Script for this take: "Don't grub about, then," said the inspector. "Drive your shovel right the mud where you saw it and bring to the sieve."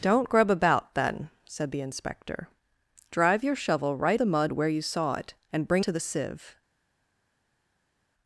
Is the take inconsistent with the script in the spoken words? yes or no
no